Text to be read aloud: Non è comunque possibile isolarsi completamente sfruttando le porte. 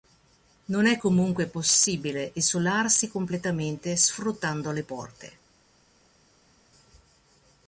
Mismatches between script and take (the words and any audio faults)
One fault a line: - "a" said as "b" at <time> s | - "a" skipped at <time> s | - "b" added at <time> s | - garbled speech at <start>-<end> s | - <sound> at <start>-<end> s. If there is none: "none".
none